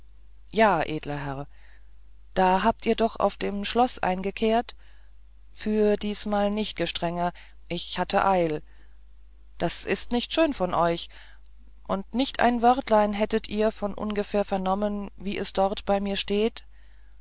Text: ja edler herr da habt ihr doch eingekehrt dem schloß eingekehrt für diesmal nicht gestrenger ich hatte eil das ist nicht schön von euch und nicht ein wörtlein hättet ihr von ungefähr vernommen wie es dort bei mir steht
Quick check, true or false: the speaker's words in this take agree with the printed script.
false